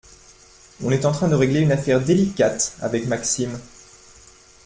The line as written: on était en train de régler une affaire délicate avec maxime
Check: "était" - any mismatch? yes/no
yes